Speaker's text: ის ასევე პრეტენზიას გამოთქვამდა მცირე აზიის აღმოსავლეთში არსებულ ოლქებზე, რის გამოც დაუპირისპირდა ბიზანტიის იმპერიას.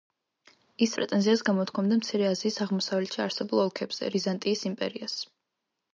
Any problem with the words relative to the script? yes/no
yes